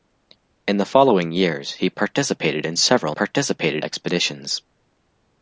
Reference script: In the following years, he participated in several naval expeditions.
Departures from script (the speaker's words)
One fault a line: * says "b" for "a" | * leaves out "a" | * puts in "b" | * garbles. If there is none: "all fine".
* says "participated" for "naval"